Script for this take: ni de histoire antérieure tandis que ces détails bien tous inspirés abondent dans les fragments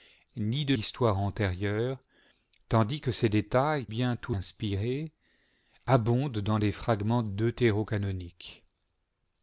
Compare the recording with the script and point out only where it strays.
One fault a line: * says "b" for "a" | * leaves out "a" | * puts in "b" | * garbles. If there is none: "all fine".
all fine